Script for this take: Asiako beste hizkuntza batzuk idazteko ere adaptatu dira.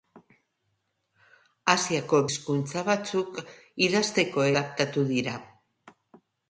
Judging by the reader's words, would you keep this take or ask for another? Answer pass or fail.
fail